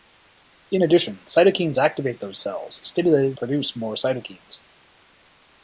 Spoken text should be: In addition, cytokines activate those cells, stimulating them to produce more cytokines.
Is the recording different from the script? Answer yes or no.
yes